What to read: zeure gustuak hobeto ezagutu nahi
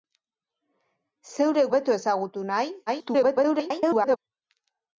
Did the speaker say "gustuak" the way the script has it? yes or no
no